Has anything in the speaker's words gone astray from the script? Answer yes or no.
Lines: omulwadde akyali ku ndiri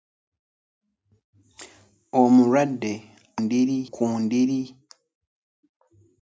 yes